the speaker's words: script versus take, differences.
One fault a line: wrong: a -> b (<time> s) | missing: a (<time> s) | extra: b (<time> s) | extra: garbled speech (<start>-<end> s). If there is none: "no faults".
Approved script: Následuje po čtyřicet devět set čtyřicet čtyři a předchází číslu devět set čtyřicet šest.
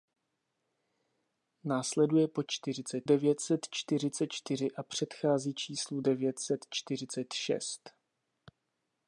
no faults